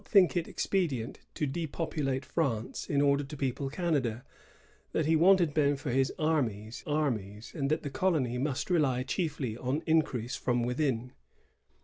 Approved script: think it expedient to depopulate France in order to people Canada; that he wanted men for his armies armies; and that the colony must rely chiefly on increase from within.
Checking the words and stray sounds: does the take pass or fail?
pass